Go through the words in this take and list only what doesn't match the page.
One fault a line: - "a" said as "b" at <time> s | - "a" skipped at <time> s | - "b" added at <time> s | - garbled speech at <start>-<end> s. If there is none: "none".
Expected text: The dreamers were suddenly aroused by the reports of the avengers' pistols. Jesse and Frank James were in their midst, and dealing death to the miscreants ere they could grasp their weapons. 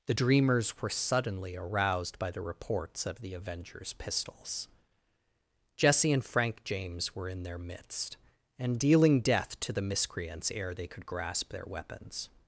none